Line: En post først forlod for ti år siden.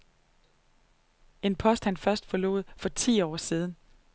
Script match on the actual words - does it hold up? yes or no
no